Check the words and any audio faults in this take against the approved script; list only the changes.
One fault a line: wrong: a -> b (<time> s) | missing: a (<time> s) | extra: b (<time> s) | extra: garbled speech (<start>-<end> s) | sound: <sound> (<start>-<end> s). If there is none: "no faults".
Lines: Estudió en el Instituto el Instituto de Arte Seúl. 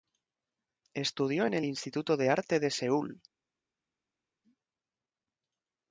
wrong: el Instituto -> de Arte (2.2 s)
missing: Arte (2.7 s)